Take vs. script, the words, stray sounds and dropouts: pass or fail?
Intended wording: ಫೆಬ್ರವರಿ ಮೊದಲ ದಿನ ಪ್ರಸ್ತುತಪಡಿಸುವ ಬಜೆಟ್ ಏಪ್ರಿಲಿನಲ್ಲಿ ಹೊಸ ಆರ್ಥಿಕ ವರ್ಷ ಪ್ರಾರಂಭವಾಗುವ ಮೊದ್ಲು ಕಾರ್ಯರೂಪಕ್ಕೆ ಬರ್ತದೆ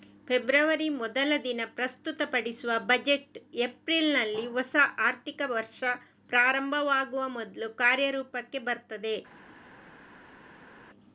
pass